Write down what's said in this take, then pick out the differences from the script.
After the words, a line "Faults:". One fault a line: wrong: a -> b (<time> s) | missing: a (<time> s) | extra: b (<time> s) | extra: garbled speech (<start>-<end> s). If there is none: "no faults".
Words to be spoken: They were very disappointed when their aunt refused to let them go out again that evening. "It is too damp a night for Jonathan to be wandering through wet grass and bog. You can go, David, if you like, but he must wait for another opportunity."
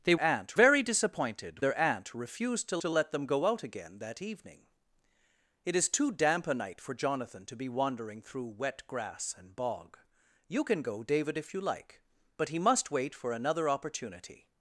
They aunt very disappointed their aunt refused to to let them go out again that evening. "It is too damp a night for Jonathan to be wandering through wet grass and bog. You can go, David, if you like, but he must wait for another opportunity."
Faults:
wrong: were -> aunt (0.2 s)
missing: when (1.6 s)
extra: to (2.8 s)